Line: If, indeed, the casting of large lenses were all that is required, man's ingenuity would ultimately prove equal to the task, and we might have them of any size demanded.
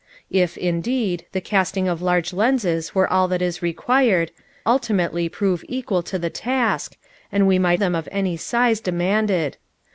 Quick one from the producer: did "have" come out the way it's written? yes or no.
no